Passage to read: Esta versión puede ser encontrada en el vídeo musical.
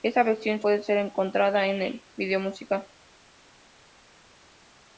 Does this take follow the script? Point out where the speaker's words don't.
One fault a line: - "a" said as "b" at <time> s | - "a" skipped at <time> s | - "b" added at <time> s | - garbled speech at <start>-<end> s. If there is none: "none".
none